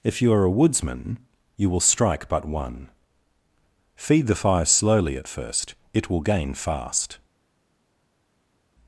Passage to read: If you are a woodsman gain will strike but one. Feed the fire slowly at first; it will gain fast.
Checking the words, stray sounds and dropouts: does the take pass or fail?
fail